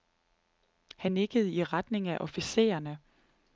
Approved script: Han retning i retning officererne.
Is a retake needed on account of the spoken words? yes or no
yes